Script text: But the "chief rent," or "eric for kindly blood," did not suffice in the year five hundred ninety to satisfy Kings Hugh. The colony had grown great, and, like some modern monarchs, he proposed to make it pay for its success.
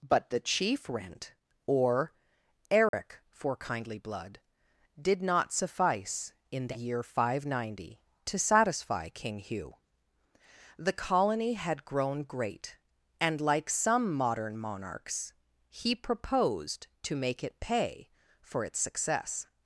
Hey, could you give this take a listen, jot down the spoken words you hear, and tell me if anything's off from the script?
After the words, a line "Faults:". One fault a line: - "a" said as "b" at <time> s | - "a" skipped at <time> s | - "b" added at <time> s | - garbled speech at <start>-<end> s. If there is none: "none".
But the "chief rent," or "eric for kindly blood," did not suffice in the year five hundred ninety to satisfy King Hugh. The colony had grown great, and, like some modern monarchs, he proposed to make it pay for its success.
Faults:
- "Kings" said as "King" at 9.1 s